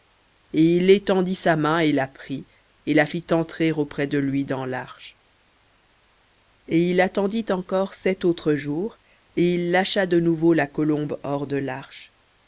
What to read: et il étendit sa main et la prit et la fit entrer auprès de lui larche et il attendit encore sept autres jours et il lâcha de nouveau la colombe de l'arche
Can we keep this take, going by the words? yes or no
no